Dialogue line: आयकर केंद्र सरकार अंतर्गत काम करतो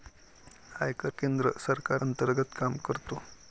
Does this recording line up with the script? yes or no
yes